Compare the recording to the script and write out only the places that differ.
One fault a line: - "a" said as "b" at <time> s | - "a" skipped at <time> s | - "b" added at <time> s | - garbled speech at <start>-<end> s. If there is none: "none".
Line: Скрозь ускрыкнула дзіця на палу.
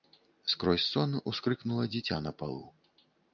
- "сон" added at 0.9 s